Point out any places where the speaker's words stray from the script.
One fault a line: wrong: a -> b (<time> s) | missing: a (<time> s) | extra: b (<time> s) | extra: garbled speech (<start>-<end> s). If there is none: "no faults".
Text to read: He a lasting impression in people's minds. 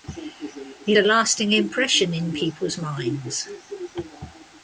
no faults